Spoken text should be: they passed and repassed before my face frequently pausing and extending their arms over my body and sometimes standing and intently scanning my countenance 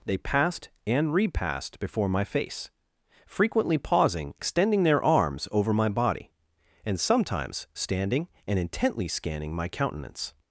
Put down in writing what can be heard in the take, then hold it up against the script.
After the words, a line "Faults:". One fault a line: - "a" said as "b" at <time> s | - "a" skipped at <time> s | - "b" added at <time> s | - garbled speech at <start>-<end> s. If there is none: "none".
they passed and repassed before my face frequently pausing extending their arms over my body and sometimes standing and intently scanning my countenance
Faults:
- "and" skipped at 4.3 s